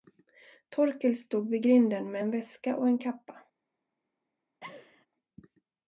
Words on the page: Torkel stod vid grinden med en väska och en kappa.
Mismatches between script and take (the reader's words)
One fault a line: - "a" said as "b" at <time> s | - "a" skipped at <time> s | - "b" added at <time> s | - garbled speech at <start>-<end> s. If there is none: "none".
none